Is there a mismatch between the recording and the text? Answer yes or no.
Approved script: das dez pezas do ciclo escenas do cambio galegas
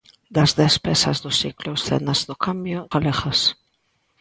no